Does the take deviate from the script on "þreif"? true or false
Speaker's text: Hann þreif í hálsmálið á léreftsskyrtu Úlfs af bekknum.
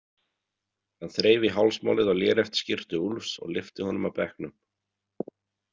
false